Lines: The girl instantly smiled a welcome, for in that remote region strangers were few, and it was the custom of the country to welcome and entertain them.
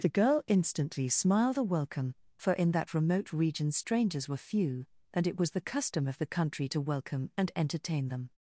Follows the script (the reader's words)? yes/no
yes